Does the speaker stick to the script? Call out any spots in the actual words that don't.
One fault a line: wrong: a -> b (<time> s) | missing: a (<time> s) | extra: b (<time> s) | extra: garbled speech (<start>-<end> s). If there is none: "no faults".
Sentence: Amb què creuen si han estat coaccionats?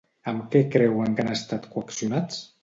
wrong: si -> que (1.1 s)